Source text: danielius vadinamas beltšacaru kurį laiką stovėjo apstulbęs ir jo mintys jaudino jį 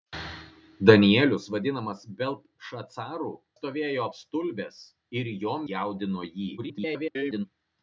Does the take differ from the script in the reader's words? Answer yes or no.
yes